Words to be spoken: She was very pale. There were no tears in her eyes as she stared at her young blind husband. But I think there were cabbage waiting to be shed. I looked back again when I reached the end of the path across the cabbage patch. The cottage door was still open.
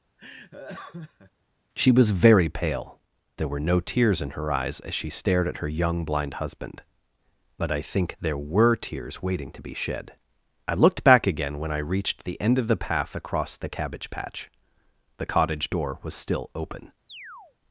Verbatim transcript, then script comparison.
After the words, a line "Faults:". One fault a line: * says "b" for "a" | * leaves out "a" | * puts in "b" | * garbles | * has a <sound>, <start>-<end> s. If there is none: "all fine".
She was very pale. There were no tears in her eyes as she stared at her young blind husband. But I think there were tears waiting to be shed. I looked back again when I reached the end of the path across the cabbage patch. The cottage door was still open.
Faults:
* has a laugh, 0.2-1.3 s
* says "tears" for "cabbage"
* has a chirp, 17.1-17.6 s